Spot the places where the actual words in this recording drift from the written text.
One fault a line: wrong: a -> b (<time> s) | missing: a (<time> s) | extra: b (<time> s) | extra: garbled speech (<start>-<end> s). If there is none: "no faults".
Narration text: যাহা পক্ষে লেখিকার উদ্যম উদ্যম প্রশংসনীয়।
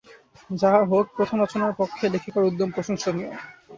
extra: হউক প্রথম রচনার (0.8 s)
missing: উদ্যম (2.7 s)